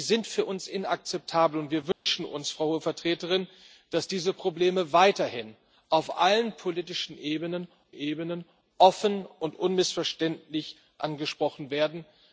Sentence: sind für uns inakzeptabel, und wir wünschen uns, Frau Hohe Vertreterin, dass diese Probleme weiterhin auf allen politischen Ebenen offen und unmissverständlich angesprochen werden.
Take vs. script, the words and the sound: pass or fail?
fail